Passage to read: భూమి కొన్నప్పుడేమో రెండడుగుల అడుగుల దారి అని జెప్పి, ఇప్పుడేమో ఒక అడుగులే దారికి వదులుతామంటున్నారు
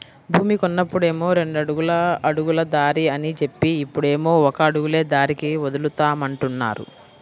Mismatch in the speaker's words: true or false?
false